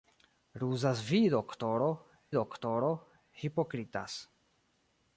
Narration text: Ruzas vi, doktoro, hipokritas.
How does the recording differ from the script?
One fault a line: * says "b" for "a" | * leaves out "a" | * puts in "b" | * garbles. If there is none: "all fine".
* puts in "doktoro"